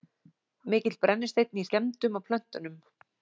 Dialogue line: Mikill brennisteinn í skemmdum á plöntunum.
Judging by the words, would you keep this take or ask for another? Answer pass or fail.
pass